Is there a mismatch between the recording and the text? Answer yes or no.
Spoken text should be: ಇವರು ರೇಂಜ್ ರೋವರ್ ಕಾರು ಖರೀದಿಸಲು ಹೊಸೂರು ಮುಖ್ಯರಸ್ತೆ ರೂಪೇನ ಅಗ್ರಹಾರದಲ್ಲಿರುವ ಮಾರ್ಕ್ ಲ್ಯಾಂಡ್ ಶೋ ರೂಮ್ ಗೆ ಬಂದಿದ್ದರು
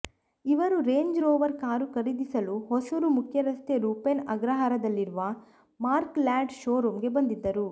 no